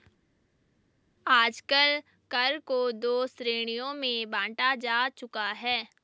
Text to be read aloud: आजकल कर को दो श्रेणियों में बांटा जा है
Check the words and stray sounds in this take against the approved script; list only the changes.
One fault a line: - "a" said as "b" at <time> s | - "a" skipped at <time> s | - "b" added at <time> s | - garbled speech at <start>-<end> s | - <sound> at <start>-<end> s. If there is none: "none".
- "चुका" added at 5.1 s